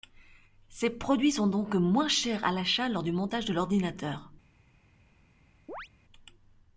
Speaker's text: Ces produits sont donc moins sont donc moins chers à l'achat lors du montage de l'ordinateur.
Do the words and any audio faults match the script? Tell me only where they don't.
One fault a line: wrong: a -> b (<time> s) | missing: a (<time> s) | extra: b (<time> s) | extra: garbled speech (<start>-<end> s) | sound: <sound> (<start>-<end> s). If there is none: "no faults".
missing: sont donc moins (2.1 s)
sound: chirp (5.7-5.9 s)